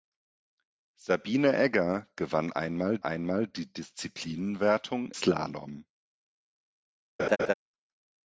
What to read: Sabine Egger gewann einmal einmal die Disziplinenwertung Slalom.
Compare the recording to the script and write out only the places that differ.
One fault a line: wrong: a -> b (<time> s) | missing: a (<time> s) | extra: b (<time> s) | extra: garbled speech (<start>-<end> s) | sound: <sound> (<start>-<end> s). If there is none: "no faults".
sound: laugh (7.2-7.5 s)